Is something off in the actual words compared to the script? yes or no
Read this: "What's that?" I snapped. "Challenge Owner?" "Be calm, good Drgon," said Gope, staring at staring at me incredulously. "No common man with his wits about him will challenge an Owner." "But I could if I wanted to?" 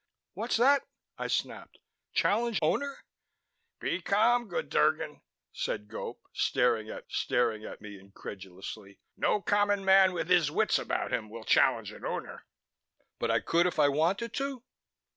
no